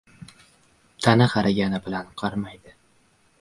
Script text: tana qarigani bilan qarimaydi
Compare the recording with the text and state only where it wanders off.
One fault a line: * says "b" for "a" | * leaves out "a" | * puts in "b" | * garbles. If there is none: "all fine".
all fine